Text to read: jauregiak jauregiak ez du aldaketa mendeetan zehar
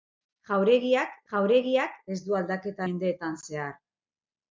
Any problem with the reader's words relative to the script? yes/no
no